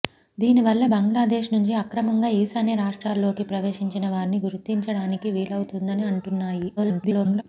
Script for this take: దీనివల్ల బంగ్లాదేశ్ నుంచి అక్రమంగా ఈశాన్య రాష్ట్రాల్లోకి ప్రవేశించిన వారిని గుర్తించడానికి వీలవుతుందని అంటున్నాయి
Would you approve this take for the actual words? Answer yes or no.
no